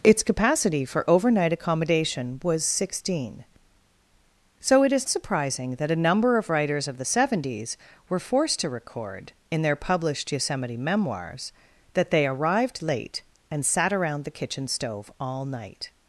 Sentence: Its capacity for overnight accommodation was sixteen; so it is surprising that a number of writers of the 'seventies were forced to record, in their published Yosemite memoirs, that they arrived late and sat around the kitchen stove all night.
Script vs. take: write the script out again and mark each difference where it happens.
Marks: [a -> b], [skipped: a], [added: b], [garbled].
Its capacity for overnight accommodation was sixteen; so it is surprising that a number of writers of the 'seventies were forced to record, in their published Yosemite memoirs, that they arrived late and sat around the kitchen stove all night.